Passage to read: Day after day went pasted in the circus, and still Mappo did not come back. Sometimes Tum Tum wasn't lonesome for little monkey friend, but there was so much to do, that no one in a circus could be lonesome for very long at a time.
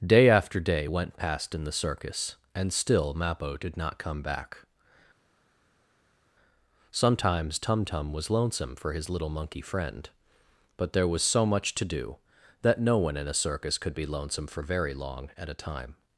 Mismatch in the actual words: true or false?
true